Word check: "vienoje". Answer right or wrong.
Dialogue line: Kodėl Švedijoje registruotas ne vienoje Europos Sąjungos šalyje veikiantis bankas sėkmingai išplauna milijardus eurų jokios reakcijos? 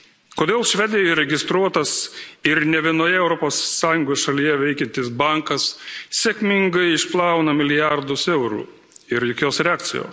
right